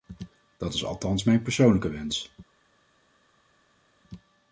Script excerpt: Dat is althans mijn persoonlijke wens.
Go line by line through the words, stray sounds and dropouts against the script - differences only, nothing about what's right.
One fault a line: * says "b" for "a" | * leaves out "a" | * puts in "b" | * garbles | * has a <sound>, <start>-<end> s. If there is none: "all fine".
all fine